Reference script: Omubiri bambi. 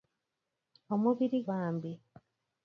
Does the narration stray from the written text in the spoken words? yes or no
no